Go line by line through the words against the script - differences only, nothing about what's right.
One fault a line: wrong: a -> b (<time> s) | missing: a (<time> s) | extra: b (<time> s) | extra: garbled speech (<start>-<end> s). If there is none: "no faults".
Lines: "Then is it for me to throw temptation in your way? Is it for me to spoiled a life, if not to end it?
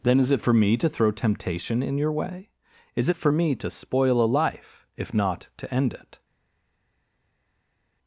wrong: spoiled -> spoil (3.7 s)